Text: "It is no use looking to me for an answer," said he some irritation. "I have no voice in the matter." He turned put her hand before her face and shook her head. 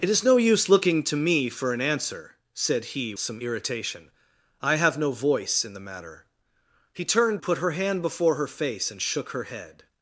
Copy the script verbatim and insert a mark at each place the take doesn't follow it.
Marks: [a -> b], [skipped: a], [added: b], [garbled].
"It is no use looking to me for an answer," said he some irritation. "I have no voice in the matter." He turned put her hand before her face and shook her head.